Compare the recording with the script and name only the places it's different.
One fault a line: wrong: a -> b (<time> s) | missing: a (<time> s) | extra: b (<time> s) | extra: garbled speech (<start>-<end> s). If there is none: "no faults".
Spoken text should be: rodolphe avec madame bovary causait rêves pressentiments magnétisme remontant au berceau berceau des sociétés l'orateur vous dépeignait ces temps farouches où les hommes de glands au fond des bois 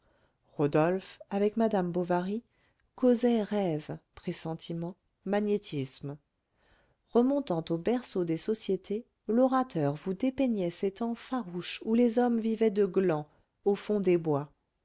missing: berceau (8.2 s)
extra: vivaient (12.4 s)